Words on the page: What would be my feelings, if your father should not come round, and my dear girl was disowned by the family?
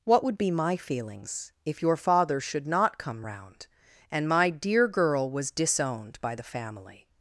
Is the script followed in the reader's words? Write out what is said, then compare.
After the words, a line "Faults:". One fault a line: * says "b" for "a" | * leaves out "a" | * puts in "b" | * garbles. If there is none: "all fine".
What would be my feelings, if your father should not come round, and my dear girl was disowned by the family?
Faults:
all fine